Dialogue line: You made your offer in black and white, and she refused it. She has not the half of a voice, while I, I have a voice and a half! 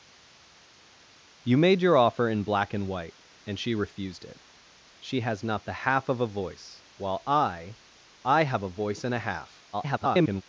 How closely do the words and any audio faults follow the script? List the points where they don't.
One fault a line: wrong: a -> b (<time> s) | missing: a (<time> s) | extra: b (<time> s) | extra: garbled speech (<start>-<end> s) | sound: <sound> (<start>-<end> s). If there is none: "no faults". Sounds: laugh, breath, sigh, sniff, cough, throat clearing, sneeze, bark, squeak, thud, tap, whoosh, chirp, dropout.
extra: garbled speech (9.7-10.4 s)